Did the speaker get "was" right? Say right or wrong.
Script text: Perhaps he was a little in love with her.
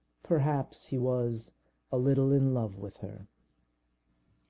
right